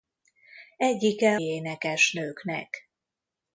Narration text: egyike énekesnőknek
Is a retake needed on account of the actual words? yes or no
no